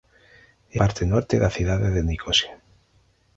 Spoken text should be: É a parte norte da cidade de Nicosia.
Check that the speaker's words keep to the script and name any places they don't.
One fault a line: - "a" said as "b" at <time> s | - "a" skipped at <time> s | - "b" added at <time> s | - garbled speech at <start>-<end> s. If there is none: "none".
- "a" skipped at 0.8 s